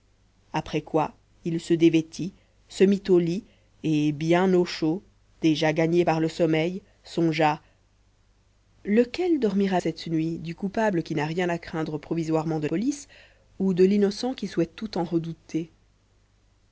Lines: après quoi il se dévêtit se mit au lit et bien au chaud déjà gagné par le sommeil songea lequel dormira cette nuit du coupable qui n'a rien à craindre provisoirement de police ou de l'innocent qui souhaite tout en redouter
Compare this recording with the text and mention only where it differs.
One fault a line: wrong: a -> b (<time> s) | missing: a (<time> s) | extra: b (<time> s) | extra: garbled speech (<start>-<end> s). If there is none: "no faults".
no faults